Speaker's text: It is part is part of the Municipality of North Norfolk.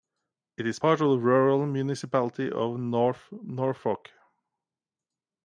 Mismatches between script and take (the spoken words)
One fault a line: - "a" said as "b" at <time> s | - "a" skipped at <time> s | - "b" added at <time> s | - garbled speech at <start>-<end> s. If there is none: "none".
- "is part" skipped at 1.0 s
- "Rural" added at 1.2 s